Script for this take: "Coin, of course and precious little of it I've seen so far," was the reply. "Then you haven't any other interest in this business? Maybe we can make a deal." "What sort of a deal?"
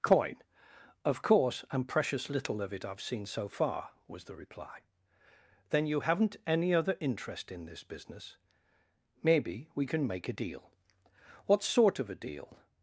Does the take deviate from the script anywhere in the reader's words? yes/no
no